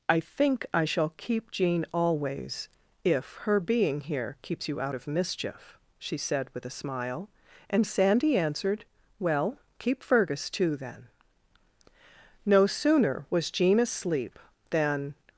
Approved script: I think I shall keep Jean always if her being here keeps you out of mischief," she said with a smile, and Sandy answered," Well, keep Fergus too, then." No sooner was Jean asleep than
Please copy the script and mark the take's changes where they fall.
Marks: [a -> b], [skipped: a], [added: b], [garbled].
I think I shall keep Jean always if her being here keeps you out of mischief," she said with a smile, and Sandy answered," Well, keep Fergus too, then." No sooner was Jean asleep than